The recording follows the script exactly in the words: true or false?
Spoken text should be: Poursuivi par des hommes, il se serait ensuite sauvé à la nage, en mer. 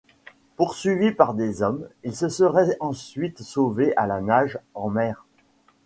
true